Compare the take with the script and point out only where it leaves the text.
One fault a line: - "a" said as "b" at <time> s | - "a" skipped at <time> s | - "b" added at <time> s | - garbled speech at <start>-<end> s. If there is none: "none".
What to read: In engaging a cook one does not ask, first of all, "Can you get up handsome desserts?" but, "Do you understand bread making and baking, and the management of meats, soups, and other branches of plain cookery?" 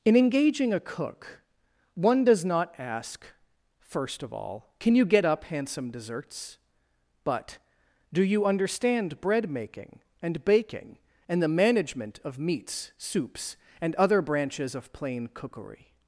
none